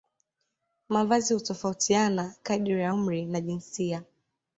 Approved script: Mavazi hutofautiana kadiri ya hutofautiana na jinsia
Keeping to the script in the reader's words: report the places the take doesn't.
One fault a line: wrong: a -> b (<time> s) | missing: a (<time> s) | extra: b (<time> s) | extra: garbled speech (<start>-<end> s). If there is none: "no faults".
wrong: hutofautiana -> umri (2.9 s)